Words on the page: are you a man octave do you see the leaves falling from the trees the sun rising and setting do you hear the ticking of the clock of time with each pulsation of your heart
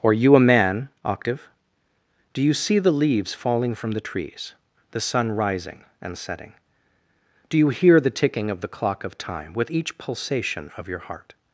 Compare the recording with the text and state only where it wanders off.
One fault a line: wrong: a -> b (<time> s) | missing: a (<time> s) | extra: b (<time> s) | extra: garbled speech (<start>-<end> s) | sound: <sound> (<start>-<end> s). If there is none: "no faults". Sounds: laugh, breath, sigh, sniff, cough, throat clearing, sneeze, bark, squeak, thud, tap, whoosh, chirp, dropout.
wrong: are -> or (0.0 s)